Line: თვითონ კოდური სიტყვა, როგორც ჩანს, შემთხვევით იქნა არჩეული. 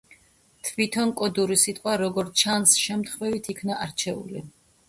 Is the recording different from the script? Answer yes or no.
no